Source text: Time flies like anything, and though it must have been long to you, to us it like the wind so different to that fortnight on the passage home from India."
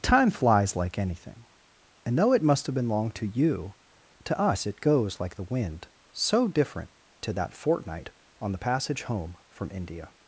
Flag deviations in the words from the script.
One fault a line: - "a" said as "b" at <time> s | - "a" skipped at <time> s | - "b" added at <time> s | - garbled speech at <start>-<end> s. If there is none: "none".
- "goes" added at 4.8 s